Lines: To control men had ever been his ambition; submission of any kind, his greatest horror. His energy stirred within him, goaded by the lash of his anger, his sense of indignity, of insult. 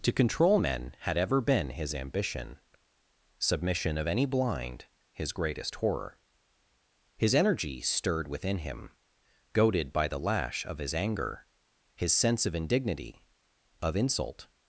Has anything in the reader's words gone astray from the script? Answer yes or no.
yes